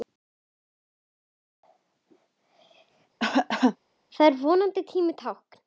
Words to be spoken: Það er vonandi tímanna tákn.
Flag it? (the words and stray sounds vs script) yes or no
yes